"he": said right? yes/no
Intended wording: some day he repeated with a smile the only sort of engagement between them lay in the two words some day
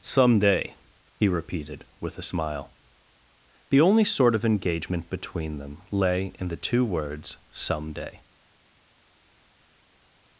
yes